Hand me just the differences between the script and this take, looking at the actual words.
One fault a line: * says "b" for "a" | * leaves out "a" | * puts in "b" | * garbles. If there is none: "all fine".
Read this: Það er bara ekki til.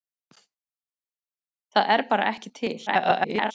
* garbles